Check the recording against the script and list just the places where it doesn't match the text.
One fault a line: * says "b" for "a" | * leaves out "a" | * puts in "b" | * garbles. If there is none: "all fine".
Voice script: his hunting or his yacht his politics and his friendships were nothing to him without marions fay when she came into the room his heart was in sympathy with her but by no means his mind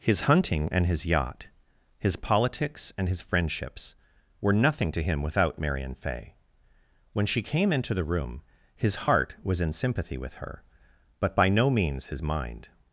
* says "and" for "or"
* says "marion" for "marions"